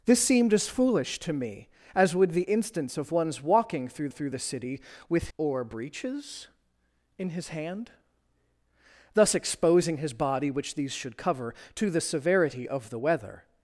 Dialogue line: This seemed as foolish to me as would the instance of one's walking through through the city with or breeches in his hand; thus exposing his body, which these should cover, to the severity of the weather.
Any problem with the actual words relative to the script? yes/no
no